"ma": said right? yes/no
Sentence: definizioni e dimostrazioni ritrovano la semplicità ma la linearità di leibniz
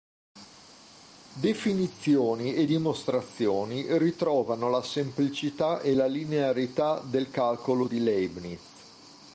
no